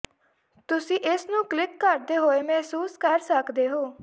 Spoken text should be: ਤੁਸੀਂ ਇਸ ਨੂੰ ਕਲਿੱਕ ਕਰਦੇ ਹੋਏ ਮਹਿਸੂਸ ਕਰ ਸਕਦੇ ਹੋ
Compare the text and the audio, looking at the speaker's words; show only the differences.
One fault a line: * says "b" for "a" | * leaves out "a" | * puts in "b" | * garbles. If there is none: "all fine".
all fine